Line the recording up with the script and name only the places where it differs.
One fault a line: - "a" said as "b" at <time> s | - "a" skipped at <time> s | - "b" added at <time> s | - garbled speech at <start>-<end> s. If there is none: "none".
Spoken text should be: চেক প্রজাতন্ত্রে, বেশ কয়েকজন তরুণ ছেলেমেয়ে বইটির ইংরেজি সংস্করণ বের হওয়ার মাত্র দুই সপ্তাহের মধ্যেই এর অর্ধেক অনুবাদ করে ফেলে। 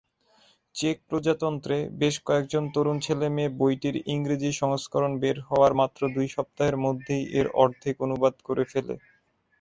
none